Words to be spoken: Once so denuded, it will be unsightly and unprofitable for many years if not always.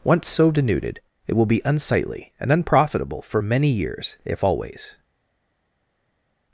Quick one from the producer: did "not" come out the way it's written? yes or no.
no